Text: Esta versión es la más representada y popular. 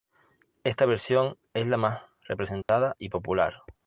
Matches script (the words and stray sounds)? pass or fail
fail